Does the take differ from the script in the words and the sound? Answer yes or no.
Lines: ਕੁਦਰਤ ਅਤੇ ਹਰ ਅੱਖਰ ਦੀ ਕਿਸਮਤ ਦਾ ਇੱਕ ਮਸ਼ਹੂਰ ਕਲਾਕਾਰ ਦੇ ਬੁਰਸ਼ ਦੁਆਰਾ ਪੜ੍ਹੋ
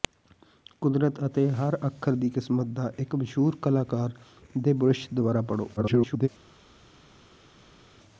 yes